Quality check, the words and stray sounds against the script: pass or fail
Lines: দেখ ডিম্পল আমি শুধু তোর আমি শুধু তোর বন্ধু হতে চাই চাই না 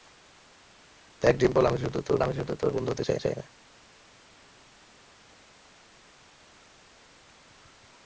pass